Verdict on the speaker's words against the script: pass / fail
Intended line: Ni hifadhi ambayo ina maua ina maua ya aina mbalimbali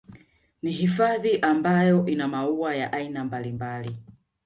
fail